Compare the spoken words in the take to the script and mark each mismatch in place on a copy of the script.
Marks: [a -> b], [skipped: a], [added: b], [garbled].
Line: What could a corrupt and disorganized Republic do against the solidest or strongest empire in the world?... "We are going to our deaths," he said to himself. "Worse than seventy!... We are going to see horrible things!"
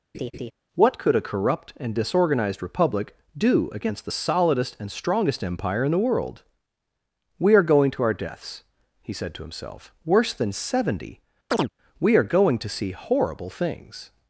What could a corrupt and disorganized Republic do against the solidest [or -> and] strongest empire in the world?... "We are going to our deaths," he said to himself. "Worse than seventy!... We are going to see horrible things!"